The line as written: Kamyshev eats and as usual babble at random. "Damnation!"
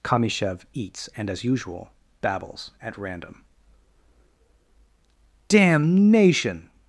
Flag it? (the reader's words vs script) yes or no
yes